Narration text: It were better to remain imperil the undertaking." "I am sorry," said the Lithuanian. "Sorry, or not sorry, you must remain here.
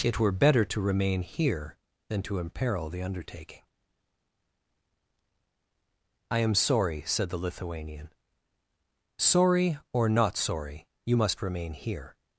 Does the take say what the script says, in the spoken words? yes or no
no